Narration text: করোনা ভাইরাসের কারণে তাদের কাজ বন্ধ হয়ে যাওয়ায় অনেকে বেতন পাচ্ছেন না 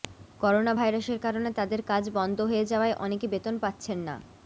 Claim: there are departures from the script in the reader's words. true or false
false